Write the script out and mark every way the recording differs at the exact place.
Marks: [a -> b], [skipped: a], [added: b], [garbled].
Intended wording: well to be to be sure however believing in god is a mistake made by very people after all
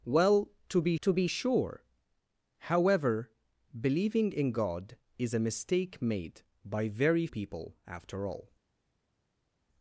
well to be to be sure however believing in god is a mistake made by very people after all